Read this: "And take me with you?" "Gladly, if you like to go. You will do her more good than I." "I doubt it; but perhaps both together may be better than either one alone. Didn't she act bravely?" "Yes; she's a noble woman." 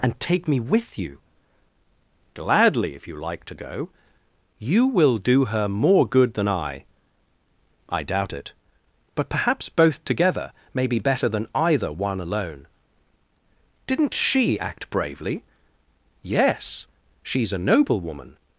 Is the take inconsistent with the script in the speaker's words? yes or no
no